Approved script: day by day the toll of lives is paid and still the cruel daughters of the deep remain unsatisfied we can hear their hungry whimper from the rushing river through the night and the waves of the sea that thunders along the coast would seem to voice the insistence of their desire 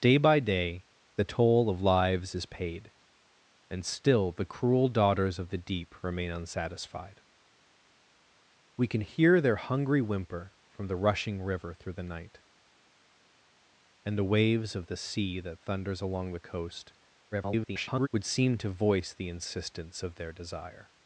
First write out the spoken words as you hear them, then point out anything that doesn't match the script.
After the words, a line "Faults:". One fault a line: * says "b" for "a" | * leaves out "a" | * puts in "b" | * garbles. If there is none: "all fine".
day by day the toll of lives is paid and still the cruel daughters of the deep remain unsatisfied we can hear their hungry whimper from the rushing river through the night and the waves of the sea that thunders along the coast [garbled] would seem to voice the insistence of their desire
Faults:
* garbles